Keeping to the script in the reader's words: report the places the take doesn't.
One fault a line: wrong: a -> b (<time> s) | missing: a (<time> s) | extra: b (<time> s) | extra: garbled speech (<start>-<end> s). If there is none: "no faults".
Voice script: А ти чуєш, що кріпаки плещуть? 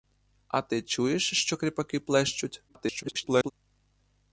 extra: garbled speech (2.7-3.5 s)